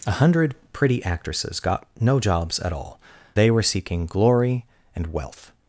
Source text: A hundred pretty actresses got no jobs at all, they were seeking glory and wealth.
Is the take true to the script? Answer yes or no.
yes